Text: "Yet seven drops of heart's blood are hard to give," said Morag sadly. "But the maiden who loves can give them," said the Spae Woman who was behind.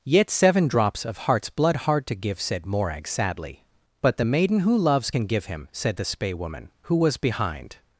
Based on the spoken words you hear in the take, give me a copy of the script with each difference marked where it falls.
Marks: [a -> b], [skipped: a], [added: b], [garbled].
"Yet seven drops of heart's blood [skipped: are] hard to give," said Morag sadly. "But the maiden who loves can give [them," -> him] said the Spae Woman who was behind.